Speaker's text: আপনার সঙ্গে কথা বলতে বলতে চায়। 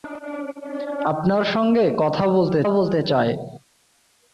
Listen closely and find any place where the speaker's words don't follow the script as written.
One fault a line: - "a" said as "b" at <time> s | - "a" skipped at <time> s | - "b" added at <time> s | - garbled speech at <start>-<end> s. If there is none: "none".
none